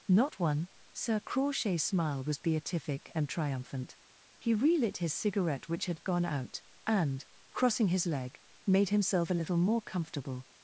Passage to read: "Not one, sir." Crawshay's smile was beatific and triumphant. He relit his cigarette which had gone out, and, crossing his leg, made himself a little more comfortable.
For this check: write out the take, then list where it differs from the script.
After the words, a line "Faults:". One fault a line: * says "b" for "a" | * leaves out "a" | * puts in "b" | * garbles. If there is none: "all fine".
"Not one, sir." Crawshay's smile was beatific and triumphant. He relit his cigarette which had gone out, and, crossing his leg, made himself a little more comfortable.
Faults:
all fine